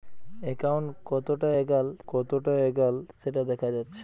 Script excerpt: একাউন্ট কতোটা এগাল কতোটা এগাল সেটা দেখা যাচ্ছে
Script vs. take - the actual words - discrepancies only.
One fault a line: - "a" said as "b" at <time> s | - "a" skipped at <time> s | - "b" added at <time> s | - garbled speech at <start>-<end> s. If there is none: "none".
none